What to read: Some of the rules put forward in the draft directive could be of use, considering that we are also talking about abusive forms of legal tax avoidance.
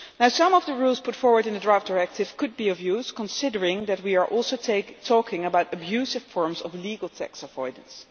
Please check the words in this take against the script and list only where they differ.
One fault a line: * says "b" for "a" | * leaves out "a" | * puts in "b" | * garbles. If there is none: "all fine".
all fine